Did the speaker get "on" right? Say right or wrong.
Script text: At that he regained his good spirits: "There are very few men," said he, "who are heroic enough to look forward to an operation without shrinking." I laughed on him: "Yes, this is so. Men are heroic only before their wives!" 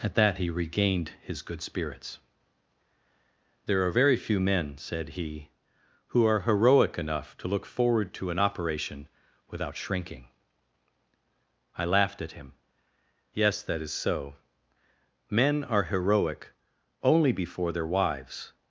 wrong